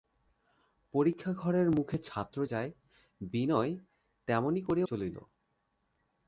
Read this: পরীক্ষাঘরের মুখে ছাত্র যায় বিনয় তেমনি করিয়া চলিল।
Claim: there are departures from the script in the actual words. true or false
false